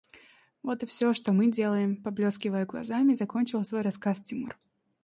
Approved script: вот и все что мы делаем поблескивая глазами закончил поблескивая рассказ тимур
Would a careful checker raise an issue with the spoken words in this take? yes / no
yes